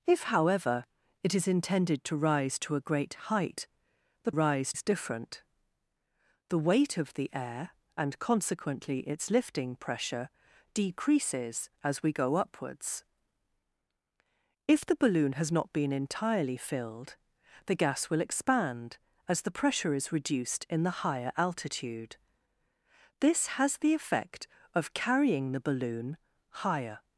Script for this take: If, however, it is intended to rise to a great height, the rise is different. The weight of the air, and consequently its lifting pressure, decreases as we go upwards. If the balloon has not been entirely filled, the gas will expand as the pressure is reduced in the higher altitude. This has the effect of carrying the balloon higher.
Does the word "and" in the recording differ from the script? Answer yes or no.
no